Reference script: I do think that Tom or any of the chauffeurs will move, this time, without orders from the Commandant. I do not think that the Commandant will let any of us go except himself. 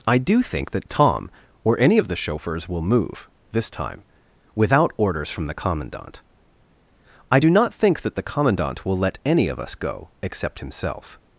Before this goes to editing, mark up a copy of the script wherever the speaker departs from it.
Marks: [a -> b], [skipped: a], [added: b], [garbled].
I do think that Tom or any of the chauffeurs will move, this time, without orders from the Commandant. I do not think that the Commandant will let any of us go except himself.